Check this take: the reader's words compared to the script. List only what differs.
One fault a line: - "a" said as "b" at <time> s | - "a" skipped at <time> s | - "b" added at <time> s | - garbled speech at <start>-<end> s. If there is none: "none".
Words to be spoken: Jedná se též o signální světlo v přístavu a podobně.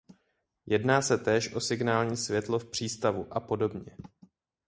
none